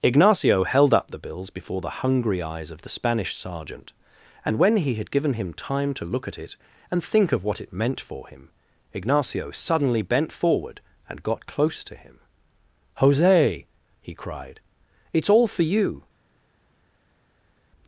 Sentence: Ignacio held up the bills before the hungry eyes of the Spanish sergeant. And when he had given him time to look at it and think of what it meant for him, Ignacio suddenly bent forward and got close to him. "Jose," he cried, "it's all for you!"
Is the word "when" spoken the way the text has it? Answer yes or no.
yes